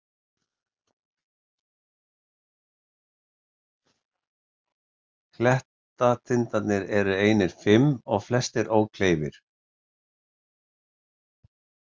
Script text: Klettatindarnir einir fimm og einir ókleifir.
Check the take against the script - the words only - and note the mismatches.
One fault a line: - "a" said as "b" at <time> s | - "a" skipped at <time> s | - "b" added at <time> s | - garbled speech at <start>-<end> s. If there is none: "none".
- "eru" added at 7.0 s
- "einir" said as "flestir" at 8.3 s